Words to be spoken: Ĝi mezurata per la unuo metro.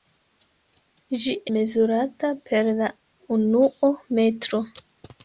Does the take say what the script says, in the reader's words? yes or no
yes